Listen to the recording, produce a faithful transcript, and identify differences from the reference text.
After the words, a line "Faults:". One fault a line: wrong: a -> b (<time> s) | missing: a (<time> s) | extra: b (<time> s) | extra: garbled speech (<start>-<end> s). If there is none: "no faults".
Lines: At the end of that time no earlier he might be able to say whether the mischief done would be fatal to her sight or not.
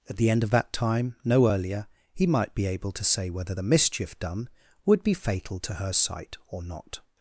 At the end of that time no earlier he might be able to say whether the mischief done would be fatal to her sight or not.
Faults:
no faults